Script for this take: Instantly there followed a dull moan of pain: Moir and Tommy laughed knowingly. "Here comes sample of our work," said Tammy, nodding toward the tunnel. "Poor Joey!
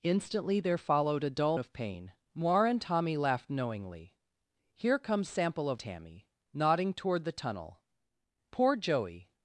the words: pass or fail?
fail